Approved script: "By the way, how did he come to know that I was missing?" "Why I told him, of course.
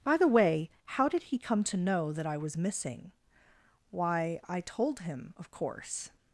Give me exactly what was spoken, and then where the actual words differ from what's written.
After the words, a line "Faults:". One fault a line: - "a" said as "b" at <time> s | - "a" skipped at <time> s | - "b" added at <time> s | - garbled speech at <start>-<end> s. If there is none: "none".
"By the way, how did he come to know that I was missing?" "Why I told him, of course.
Faults:
none